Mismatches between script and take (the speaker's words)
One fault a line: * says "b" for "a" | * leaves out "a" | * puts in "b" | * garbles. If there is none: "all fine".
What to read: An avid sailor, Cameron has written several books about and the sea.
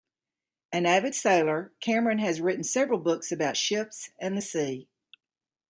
* puts in "ships"